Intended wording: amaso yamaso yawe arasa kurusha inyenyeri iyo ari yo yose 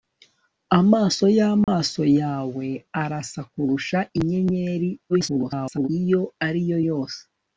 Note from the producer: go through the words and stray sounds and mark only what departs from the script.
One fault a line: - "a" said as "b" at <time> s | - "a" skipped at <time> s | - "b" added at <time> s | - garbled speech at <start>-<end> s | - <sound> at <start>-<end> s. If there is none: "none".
- dropout at 1.6-1.7 s
- garbled speech at 5.1-5.9 s